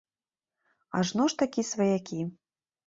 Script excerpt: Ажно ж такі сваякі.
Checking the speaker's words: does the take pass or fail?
pass